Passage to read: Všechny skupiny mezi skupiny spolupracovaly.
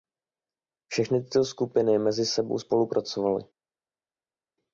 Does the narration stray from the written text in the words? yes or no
yes